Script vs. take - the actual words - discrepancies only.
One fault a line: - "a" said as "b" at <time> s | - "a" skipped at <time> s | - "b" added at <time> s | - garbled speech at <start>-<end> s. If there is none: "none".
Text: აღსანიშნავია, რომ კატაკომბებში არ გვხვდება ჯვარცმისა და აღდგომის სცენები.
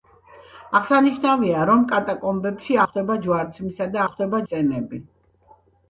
- "არ" skipped at 2.8 s
- "აღდგომის" said as "გვხვდება" at 4.1 s